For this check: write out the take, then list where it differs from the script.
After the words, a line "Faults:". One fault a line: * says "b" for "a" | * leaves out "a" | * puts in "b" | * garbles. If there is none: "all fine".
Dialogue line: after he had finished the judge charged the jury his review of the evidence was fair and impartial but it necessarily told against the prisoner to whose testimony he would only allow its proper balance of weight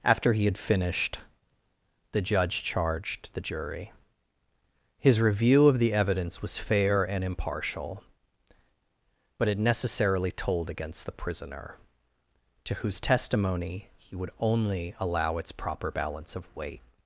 after he had finished the judge charged the jury his review of the evidence was fair and impartial but it necessarily told against the prisoner to whose testimony he would only allow its proper balance of weight
Faults:
all fine